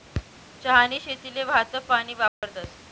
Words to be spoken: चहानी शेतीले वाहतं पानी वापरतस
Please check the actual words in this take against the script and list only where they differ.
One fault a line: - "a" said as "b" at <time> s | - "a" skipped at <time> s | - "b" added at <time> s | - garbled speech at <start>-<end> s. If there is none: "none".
none